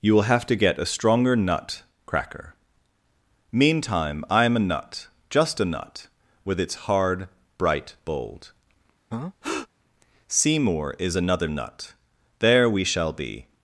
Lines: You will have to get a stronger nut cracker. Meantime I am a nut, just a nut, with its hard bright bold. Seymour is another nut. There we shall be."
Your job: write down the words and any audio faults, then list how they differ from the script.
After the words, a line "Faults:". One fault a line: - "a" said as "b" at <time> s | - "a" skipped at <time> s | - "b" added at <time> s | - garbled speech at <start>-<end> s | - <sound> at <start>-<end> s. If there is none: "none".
You will have to get a stronger nut cracker. Meantime I am a nut, just a nut, with its hard bright bold. Seymour is another nut. There we shall be."
Faults:
- breath at 9.1-9.7 s